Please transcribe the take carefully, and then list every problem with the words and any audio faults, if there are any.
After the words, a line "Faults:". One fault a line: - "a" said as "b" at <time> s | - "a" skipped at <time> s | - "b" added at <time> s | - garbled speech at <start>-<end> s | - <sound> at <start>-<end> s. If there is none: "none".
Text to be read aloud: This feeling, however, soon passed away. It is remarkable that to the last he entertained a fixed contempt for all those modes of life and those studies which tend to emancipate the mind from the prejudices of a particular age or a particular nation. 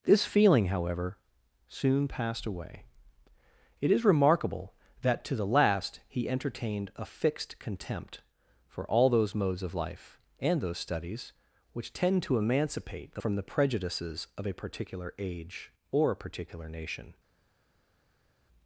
This feeling, however, soon passed away. It is remarkable that to the last he entertained a fixed contempt for all those modes of life and those studies which tend to emancipate the from the prejudices of a particular age or a particular nation.
Faults:
- "mind" skipped at 13.2 s